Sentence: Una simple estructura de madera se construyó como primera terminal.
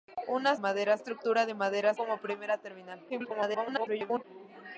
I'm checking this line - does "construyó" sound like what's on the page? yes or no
no